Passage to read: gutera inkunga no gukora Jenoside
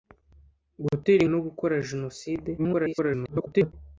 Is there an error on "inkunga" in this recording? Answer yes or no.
yes